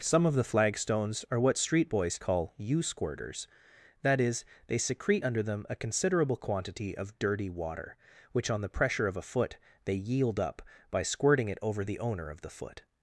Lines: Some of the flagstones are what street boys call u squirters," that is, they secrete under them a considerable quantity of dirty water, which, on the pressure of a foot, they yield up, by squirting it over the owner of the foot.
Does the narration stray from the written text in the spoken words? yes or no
no